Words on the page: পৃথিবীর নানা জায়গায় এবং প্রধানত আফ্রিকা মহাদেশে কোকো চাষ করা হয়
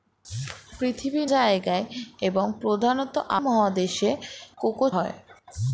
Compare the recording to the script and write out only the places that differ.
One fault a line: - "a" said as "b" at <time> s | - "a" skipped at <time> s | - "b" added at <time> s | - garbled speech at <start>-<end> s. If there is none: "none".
- "নানা" skipped at 1.3 s
- "আফ্রিকা" skipped at 3.1 s
- "চাষ করা" skipped at 4.9 s